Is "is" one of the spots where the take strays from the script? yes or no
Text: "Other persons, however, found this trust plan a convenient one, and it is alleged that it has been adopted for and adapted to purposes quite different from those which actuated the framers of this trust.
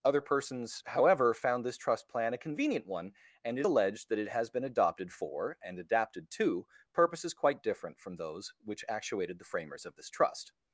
yes